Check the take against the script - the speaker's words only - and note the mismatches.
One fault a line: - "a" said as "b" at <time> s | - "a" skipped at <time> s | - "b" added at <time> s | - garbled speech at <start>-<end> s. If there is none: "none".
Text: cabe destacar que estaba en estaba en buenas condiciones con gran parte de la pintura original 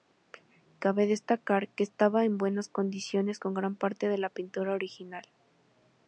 - "estaba en" skipped at 2.4 s